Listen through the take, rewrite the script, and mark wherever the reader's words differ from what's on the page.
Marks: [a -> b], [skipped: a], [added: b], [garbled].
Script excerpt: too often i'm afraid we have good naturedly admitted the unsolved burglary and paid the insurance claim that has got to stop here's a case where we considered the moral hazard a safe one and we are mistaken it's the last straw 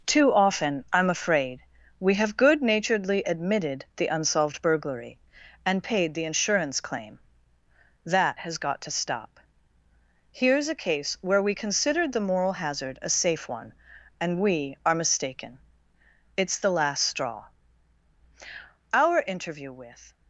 too often i'm afraid we have good naturedly admitted the unsolved burglary and paid the insurance claim that has got to stop here's a case where we considered the moral hazard a safe one and we are mistaken it's the last straw [added: our interview with]